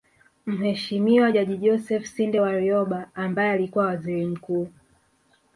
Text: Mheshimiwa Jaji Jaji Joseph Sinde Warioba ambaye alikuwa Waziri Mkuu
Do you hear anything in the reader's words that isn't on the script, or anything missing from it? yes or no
yes